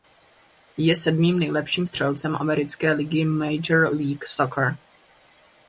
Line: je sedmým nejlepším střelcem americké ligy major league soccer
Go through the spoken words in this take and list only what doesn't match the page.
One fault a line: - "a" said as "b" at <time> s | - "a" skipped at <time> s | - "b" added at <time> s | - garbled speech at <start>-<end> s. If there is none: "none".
none